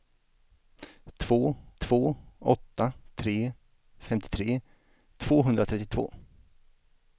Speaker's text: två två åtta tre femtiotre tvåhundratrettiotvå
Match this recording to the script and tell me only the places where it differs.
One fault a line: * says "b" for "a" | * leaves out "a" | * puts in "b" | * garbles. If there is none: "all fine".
all fine